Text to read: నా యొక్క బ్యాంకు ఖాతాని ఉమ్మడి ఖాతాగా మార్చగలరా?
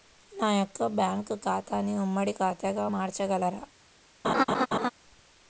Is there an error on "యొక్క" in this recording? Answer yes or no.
no